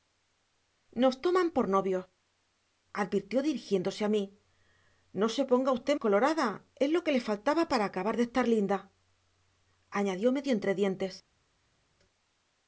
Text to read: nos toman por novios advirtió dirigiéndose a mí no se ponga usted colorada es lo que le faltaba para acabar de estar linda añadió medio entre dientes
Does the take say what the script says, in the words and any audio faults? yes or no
yes